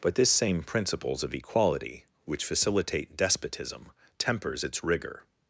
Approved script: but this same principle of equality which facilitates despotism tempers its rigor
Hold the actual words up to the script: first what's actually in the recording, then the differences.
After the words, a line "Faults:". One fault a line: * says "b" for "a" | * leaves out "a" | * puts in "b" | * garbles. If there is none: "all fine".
but this same principles of equality which facilitate despotism tempers its rigor
Faults:
* says "principles" for "principle"
* says "facilitate" for "facilitates"